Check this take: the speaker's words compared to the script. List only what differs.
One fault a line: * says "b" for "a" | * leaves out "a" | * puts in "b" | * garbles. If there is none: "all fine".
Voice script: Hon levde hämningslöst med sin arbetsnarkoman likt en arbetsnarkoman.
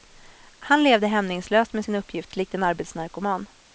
* says "Han" for "Hon"
* says "uppgift" for "arbetsnarkoman"